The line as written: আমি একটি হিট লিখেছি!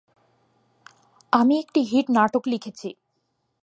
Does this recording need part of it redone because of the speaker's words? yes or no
yes